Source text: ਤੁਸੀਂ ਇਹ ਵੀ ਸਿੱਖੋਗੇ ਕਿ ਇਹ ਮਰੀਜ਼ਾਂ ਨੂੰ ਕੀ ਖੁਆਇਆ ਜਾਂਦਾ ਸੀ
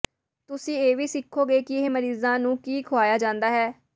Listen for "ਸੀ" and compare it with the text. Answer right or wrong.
wrong